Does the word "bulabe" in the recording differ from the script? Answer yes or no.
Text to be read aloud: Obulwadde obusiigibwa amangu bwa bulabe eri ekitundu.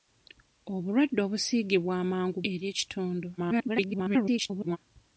yes